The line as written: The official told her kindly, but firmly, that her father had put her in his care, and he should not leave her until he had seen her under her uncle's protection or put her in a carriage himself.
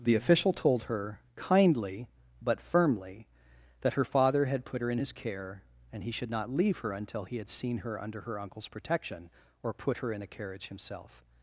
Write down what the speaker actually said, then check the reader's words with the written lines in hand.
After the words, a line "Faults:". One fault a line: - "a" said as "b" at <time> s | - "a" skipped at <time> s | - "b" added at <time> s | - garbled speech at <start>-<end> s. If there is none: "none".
The official told her kindly, but firmly, that her father had put her in his care, and he should not leave her until he had seen her under her uncle's protection or put her in a carriage himself.
Faults:
none